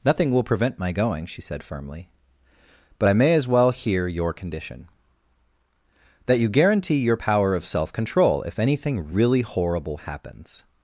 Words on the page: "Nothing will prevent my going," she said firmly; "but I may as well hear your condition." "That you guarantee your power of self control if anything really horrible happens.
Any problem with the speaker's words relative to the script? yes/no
no